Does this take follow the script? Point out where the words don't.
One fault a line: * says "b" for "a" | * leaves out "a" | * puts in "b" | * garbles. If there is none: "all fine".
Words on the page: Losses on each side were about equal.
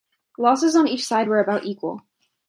all fine